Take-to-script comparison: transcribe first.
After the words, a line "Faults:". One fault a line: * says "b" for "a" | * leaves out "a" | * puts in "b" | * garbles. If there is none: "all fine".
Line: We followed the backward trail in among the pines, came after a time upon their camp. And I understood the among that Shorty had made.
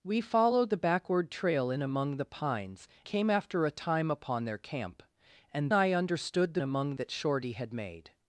We followed the backward trail in among the pines, came after a time upon their camp. And I understood the among that Shorty had made.
Faults:
all fine